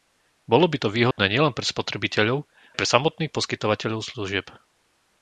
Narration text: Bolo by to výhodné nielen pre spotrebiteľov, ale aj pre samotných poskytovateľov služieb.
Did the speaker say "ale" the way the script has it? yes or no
no